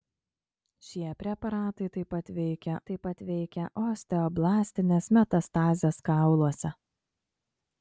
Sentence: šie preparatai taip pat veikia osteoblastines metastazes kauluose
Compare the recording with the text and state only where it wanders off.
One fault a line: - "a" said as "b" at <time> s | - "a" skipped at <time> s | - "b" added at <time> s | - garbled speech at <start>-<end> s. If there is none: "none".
- "taip pat veikia" added at 2.9 s